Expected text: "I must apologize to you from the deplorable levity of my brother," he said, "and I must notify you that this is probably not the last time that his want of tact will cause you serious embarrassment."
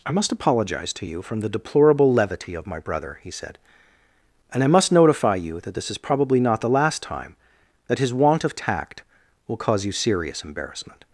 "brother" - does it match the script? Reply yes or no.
yes